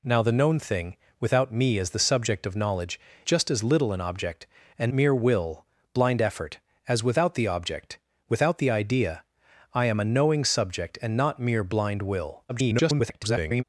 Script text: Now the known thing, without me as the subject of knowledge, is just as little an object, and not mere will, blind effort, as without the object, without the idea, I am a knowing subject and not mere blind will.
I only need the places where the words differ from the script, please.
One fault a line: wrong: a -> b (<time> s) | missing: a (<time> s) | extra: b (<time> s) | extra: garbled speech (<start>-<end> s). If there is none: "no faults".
missing: is (3.0 s)
missing: not (4.9 s)
extra: garbled speech (12.5-13.6 s)